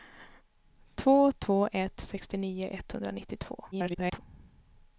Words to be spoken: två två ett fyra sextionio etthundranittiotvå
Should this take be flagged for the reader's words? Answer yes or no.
yes